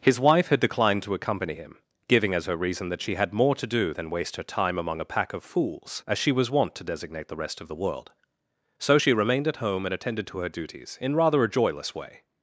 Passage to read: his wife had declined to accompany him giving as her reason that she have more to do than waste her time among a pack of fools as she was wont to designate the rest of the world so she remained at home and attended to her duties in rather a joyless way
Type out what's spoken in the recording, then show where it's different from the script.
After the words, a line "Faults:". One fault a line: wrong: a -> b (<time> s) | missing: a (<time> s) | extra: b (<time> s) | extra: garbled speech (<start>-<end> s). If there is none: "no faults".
his wife had declined to accompany him giving as her reason that she had more to do than waste her time among a pack of fools as she was wont to designate the rest of the world so she remained at home and attended to her duties in rather a joyless way
Faults:
wrong: have -> had (3.2 s)